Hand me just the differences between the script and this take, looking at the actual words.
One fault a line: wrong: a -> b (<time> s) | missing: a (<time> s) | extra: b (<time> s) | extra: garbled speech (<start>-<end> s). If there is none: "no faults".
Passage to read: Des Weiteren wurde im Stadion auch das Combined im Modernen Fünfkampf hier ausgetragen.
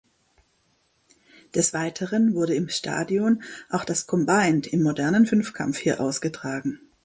no faults